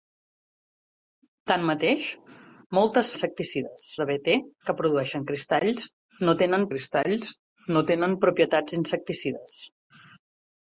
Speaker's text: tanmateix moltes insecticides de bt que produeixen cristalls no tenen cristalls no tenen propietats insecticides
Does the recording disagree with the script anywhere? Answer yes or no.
no